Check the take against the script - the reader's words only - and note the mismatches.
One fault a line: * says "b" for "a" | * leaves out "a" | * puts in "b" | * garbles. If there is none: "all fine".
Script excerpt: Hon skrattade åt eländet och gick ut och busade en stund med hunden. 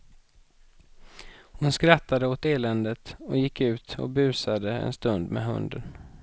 all fine